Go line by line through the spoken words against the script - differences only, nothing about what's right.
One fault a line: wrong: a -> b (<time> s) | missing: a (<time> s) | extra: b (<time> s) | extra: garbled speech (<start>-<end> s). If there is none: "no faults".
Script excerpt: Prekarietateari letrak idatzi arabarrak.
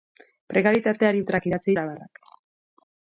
no faults